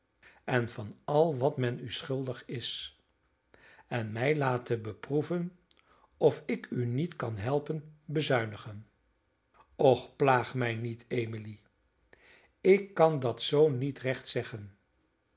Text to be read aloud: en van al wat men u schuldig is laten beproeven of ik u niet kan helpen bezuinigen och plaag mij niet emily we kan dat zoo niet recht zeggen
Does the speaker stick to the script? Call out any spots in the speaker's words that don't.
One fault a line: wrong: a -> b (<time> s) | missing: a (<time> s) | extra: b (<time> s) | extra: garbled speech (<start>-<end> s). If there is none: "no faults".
extra: en mij (3.9 s)
wrong: we -> ik (12.6 s)